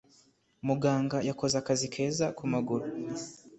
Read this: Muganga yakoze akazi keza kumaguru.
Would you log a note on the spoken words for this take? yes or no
no